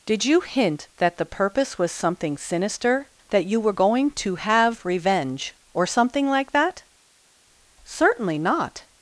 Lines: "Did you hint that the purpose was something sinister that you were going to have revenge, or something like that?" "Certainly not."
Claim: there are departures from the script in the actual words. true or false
false